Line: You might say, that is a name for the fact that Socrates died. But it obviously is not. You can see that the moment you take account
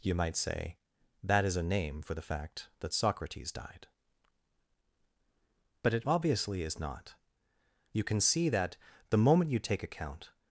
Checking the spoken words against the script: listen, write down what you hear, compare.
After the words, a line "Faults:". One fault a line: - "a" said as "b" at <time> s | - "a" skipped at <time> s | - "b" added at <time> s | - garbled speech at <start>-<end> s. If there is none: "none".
You might say, that is a name for the fact that Socrates died. But it obviously is not. You can see that the moment you take account
Faults:
none